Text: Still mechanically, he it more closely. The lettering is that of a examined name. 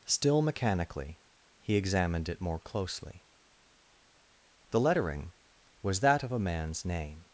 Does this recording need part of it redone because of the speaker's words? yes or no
yes